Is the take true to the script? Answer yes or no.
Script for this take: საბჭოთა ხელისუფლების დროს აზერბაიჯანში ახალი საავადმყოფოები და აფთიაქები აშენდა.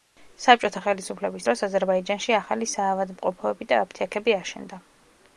yes